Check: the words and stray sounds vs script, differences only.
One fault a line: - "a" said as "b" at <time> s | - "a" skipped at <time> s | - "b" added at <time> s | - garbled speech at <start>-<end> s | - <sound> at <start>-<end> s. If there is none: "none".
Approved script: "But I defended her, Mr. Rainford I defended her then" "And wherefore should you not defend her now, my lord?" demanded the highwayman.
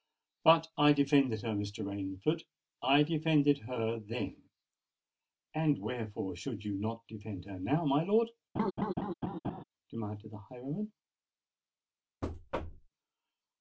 - laugh at 8.6-9.6 s
- thud at 12.2-12.9 s